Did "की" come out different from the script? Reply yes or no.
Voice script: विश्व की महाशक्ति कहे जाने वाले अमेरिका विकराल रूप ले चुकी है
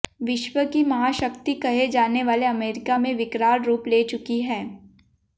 no